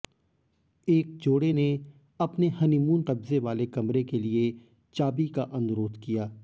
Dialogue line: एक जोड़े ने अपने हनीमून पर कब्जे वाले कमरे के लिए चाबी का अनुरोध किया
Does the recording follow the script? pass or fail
fail